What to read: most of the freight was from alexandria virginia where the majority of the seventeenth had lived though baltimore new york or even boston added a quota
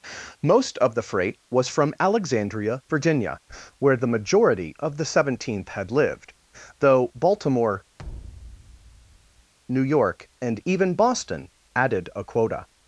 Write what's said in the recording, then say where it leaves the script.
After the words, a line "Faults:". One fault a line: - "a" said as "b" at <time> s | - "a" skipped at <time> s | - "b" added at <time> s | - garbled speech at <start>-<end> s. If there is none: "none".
most of the freight was from alexandria virginia where the majority of the seventeenth had lived though baltimore new york and even boston added a quota
Faults:
- "or" said as "and" at 10.4 s